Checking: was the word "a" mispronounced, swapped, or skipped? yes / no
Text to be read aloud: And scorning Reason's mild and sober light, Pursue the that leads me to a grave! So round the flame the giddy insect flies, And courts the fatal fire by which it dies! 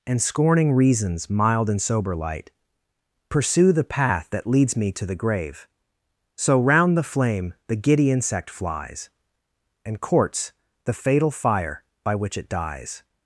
yes